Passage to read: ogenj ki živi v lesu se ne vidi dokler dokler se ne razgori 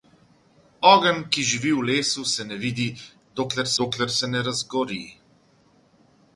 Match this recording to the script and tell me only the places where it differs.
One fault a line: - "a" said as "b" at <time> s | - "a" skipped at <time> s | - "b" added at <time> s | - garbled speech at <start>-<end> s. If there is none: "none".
none